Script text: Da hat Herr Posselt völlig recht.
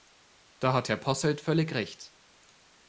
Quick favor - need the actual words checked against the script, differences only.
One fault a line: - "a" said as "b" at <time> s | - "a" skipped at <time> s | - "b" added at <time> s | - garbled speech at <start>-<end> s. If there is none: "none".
none